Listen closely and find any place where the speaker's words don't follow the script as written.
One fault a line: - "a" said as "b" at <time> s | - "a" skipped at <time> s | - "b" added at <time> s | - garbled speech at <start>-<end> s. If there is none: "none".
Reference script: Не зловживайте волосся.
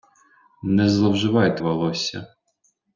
none